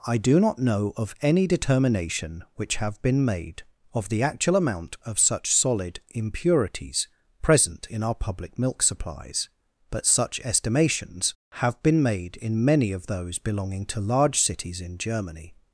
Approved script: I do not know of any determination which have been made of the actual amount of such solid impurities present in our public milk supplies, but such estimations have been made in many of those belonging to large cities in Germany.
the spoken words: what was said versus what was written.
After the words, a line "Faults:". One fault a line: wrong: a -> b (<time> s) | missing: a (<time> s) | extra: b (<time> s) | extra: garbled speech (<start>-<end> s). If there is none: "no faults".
I do not know of any determination which have been made of the actual amount of such solid impurities present in our public milk supplies, but such estimations have been made in many of those belonging to large cities in Germany.
Faults:
no faults